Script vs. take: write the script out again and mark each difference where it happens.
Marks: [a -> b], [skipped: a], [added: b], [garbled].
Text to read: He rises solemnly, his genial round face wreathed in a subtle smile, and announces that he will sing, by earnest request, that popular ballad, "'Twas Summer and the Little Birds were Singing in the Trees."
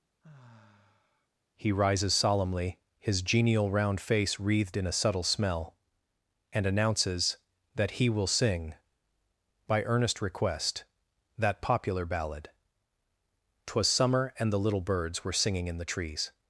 He rises solemnly, his genial round face wreathed in a subtle [smile, -> smell] and announces that he will sing, by earnest request, that popular ballad, "'Twas Summer and the Little Birds were Singing in the Trees."